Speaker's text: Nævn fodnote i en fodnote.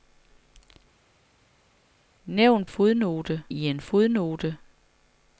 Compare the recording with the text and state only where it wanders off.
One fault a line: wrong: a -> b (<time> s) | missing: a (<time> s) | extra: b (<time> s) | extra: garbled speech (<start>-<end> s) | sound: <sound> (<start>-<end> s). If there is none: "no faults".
no faults